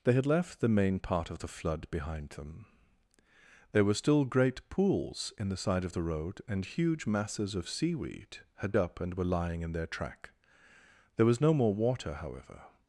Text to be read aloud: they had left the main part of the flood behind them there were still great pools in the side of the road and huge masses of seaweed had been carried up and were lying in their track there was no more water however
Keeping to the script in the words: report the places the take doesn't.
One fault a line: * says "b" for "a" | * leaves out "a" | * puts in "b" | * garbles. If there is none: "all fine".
* leaves out "been carried"